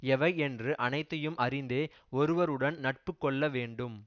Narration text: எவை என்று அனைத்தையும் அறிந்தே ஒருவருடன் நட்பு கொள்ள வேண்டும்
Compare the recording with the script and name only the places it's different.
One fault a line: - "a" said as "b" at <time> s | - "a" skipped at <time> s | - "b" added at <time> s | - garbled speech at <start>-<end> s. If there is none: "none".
none